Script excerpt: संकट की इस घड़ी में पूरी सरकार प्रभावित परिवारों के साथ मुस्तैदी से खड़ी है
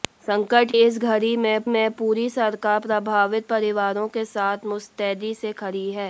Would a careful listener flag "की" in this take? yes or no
yes